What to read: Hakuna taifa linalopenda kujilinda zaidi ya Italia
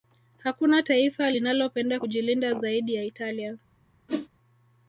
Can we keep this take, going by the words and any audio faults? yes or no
no